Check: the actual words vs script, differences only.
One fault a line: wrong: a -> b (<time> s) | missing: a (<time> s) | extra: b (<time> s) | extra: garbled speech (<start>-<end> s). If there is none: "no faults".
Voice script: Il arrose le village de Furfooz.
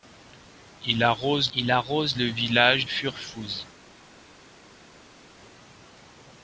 extra: il arrose (1.6 s)
missing: de (2.9 s)